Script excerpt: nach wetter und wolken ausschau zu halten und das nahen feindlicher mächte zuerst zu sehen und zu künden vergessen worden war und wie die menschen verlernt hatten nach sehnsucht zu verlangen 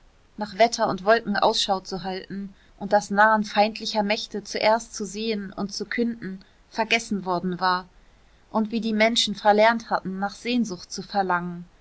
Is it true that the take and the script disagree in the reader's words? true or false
false